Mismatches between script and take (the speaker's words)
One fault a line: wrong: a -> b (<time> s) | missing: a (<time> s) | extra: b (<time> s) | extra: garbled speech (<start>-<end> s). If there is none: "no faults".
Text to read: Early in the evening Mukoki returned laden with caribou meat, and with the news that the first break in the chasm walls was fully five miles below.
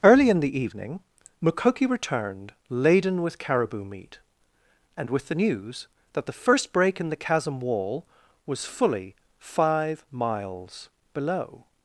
wrong: walls -> wall (7.6 s)